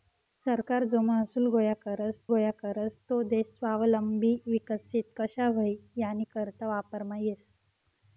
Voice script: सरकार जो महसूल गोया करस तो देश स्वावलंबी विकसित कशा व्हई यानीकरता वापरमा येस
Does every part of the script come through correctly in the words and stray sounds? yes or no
no